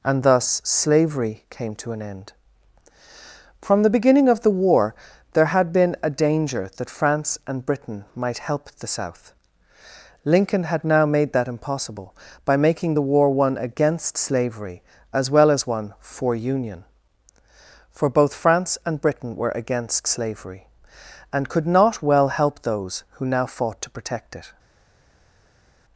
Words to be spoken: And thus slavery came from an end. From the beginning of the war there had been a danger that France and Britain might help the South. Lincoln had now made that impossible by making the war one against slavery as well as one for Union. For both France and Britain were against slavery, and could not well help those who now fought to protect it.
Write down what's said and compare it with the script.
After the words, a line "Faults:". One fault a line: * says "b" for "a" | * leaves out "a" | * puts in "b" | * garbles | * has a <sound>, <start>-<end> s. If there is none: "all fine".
And thus slavery came to an end. From the beginning of the war there had been a danger that France and Britain might help the South. Lincoln had now made that impossible by making the war one against slavery as well as one for Union. For both France and Britain were against slavery, and could not well help those who now fought to protect it.
Faults:
* says "to" for "from"